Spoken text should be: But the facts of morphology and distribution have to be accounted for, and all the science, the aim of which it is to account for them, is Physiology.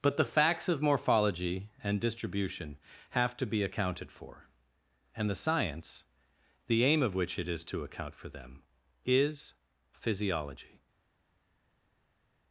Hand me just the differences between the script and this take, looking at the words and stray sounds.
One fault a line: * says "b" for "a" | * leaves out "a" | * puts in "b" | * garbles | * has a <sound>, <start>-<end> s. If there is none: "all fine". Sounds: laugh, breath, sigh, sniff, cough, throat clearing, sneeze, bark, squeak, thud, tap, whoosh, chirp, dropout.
* leaves out "all"